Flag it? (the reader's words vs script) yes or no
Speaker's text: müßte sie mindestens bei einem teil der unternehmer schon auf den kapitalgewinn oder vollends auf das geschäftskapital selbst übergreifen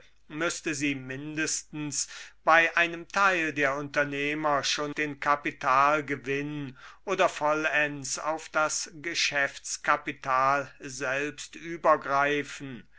yes